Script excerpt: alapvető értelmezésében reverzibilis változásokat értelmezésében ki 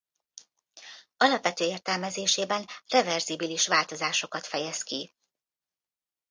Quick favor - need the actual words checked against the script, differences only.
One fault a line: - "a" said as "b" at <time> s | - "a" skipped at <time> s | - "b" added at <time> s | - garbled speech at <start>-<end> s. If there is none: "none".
- "értelmezésében" said as "fejez" at 4.5 s